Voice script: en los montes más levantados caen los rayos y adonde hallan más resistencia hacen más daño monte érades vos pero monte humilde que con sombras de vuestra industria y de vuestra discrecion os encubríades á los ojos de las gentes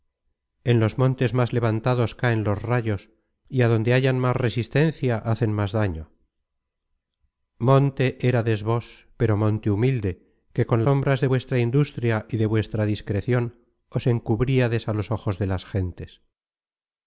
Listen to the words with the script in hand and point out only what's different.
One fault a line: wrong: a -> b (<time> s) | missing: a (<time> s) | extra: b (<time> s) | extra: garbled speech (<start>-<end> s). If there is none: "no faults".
no faults